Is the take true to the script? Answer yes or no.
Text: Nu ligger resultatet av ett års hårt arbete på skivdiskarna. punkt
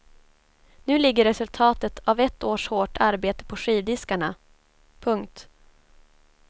yes